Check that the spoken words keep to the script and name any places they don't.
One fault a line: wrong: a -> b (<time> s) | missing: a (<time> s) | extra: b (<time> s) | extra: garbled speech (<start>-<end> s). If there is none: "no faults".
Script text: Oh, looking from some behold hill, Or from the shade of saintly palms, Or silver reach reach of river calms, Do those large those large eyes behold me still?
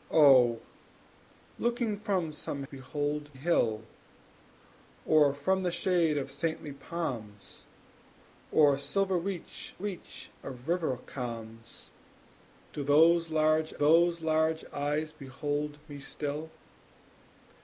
no faults